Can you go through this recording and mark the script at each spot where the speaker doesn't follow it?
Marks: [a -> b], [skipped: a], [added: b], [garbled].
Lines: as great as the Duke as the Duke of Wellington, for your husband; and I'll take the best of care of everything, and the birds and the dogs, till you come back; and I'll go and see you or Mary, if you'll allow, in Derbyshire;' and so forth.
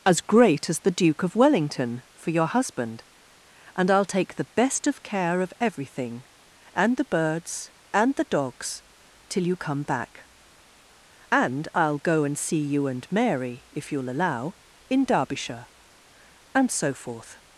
as great as the Duke [skipped: as the Duke] of Wellington, for your husband; and I'll take the best of care of everything, and the birds and the dogs, till you come back; and I'll go and see you [or -> and] Mary, if you'll allow, in Derbyshire;' and so forth.